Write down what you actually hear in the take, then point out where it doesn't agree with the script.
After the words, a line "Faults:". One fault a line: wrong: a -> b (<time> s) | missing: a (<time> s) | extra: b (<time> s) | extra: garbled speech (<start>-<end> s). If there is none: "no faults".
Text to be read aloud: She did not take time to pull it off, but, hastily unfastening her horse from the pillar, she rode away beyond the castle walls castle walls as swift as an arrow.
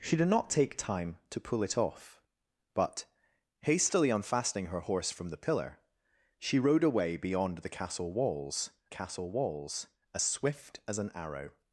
She did not take time to pull it off, but, hastily unfastening her horse from the pillar, she rode away beyond the castle walls castle walls as swift as an arrow.
Faults:
no faults